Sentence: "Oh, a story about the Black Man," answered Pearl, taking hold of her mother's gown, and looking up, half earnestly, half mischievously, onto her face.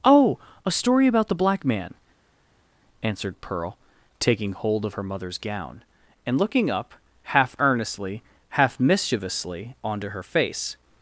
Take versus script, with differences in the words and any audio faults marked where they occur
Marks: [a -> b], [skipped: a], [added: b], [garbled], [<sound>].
"Oh, a story about the Black Man," answered Pearl, taking hold of her mother's gown, and looking up, half earnestly, half mischievously, onto her face.